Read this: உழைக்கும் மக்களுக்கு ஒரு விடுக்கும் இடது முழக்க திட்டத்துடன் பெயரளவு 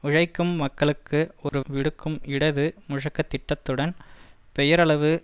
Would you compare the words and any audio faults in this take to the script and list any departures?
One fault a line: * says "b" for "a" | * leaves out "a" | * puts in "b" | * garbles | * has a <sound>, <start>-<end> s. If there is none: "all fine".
* has a dropout, 1.5-1.5 s